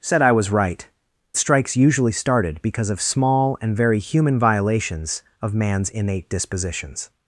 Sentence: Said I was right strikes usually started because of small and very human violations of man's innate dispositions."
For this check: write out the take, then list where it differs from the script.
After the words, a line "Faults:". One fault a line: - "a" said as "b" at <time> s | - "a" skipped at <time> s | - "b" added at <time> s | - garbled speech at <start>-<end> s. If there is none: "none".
Said I was right strikes usually started because of small and very human violations of man's innate dispositions."
Faults:
none